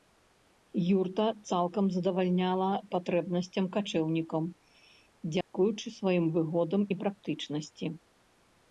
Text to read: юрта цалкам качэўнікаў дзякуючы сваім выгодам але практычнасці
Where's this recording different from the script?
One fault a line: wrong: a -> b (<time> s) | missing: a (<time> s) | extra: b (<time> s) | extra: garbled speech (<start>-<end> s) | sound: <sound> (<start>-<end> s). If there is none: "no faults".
extra: задавальняла патрэбнасцям (2.0 s)
sound: dropout (5.4-5.5 s)
wrong: але -> і (6.9 s)